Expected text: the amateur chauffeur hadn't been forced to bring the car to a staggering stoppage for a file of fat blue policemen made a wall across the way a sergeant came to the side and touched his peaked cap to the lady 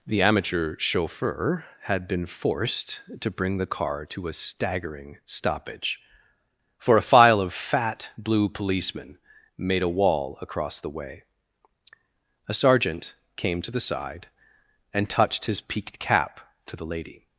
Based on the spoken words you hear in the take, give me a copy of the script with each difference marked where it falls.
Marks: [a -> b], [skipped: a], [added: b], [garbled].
the amateur chauffeur [hadn't -> had] been forced to bring the car to a staggering stoppage for a file of fat blue policemen made a wall across the way a sergeant came to the side and touched his peaked cap to the lady